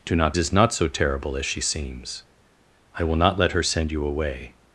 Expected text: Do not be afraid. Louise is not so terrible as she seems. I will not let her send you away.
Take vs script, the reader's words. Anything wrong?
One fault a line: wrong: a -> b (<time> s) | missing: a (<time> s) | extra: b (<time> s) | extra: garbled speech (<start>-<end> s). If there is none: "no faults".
missing: be afraid Louise (0.3 s)